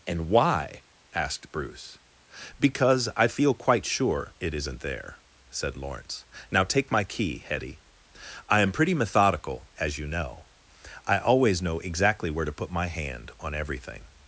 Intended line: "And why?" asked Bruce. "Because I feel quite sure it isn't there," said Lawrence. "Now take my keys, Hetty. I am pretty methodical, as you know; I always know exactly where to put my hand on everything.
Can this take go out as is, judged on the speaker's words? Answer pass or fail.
fail